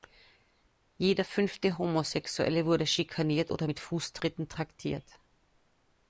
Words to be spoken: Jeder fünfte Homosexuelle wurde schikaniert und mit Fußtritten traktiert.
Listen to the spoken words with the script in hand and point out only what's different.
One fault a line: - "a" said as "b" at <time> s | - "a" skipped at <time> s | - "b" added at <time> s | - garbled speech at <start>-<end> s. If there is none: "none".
- "und" said as "oder" at 3.5 s